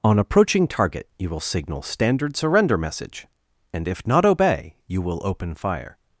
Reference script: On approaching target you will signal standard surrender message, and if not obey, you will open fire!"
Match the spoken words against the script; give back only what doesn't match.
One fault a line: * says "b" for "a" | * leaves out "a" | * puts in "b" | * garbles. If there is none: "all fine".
all fine